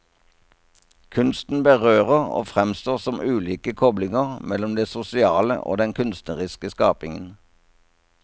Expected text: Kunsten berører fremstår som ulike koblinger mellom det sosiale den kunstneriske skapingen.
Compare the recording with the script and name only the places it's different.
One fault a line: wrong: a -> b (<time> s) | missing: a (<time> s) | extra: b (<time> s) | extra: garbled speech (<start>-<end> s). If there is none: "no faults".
extra: og (2.4 s)
extra: og (5.6 s)